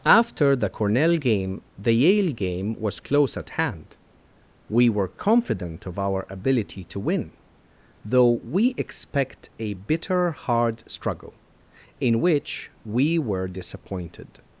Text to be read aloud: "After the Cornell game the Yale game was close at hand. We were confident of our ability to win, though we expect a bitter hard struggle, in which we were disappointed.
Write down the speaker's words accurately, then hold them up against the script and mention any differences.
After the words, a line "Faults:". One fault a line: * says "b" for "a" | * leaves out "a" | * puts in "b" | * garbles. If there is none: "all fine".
"After the Cornell game the Yale game was close at hand. We were confident of our ability to win, though we expect a bitter hard struggle, in which we were disappointed.
Faults:
all fine